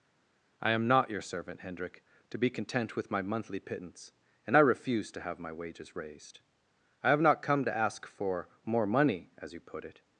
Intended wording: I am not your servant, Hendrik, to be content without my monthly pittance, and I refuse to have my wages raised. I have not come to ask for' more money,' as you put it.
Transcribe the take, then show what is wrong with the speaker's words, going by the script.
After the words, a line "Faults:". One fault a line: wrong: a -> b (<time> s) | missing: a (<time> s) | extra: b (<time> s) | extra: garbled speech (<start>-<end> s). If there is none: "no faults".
I am not your servant, Hendrik, to be content with my monthly pittance, and I refuse to have my wages raised. I have not come to ask for' more money,' as you put it.
Faults:
wrong: without -> with (3.0 s)